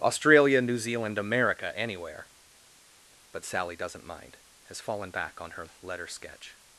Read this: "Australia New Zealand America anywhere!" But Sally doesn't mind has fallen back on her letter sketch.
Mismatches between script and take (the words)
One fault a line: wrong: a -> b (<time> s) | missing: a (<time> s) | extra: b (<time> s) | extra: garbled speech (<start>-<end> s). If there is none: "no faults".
no faults